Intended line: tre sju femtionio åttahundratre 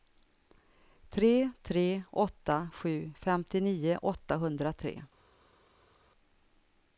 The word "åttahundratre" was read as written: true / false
true